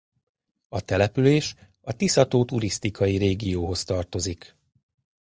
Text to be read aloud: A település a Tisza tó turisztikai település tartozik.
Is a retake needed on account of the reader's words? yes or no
yes